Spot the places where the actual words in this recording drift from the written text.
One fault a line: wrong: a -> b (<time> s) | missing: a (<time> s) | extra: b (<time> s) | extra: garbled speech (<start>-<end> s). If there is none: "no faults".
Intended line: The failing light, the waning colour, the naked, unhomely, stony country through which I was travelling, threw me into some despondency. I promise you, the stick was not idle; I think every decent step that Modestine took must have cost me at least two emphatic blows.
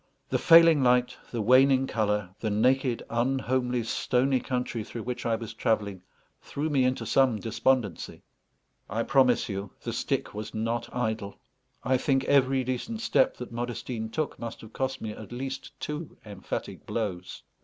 no faults